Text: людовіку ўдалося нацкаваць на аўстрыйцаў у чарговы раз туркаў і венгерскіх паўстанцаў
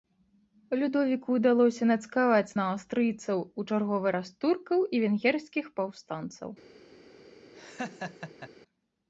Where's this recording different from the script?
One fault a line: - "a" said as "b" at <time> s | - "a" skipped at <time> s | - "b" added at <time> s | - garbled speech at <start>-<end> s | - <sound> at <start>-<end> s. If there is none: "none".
- laugh at 7.5-8.5 s